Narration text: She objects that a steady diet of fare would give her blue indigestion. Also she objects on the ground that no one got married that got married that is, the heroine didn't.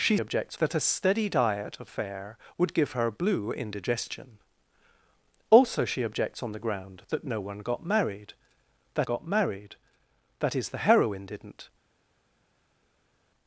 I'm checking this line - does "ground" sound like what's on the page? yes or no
yes